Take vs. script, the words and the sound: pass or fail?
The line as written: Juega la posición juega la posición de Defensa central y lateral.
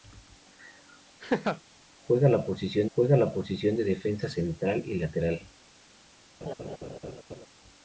fail